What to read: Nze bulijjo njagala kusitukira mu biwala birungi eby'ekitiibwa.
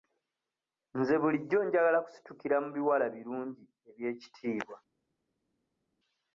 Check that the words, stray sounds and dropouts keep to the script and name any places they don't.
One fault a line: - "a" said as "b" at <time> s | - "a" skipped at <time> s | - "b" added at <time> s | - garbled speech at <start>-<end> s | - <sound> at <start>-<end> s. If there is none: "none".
none